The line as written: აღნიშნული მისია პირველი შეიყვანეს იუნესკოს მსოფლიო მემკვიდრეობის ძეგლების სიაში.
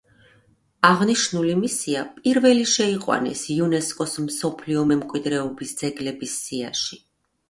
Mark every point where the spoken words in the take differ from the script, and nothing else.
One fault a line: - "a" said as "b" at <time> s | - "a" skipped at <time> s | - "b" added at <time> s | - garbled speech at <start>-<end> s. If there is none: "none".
none